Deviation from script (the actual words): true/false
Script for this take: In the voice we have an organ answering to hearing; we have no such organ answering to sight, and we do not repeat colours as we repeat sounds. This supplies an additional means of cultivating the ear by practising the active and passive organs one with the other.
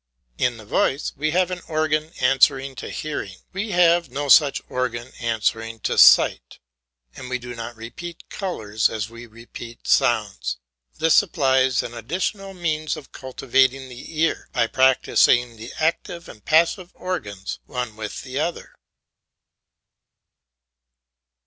false